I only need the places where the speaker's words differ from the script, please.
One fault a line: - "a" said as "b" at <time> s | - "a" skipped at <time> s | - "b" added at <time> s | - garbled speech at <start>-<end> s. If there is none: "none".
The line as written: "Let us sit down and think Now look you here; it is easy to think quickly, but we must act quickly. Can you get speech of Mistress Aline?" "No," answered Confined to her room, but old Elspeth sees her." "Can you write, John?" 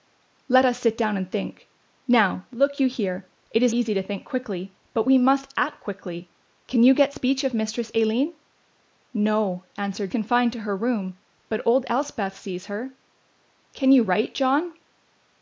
none